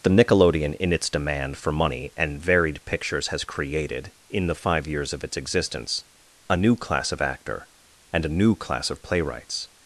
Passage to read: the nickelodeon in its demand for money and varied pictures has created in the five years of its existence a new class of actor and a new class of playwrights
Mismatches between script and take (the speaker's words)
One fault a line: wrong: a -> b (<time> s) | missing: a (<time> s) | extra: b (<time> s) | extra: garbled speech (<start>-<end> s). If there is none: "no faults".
no faults